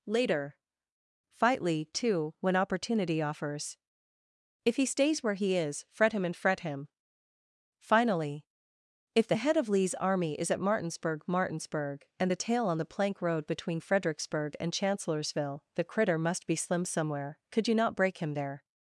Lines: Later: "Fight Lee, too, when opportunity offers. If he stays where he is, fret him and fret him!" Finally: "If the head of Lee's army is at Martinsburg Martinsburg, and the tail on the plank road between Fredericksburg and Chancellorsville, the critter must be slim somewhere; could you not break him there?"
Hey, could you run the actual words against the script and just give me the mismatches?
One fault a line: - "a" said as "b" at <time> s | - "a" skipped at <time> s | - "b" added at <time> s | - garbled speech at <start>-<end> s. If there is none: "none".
none